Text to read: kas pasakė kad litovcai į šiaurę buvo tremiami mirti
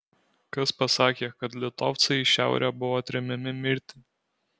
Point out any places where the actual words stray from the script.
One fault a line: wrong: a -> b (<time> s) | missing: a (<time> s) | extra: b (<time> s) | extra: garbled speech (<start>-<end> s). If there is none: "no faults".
no faults